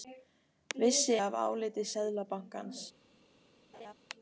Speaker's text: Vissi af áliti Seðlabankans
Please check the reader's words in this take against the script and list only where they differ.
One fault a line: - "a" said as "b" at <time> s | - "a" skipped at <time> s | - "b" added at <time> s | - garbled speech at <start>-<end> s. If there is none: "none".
none